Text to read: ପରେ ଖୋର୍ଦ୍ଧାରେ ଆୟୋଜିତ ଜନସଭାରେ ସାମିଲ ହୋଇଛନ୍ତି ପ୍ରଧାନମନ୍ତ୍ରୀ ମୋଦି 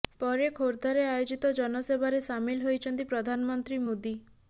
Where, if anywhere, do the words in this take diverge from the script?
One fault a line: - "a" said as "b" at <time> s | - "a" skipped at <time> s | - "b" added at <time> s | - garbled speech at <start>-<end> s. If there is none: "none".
none